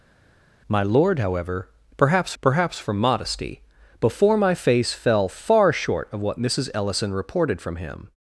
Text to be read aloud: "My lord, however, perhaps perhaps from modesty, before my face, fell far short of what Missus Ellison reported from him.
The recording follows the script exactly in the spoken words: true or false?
true